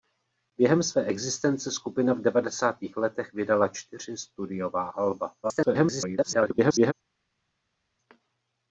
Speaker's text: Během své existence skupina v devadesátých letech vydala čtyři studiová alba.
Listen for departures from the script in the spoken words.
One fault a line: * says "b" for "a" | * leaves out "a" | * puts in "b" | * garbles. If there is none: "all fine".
* garbles